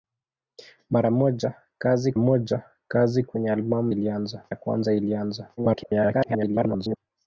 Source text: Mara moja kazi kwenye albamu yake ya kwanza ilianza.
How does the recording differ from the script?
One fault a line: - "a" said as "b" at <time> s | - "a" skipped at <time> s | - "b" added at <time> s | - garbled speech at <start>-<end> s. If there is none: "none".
- "moja kazi" added at 2.2 s
- "yake" said as "ilianza" at 3.9 s
- garbled speech at 5.6-7.0 s